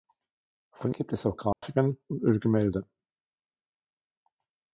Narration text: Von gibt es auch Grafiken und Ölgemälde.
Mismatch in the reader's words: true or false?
false